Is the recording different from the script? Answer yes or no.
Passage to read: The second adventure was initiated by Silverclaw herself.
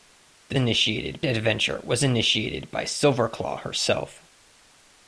yes